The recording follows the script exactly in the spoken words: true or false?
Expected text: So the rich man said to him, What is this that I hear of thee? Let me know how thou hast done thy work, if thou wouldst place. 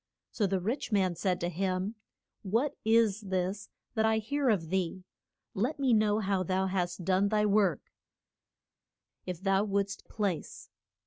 true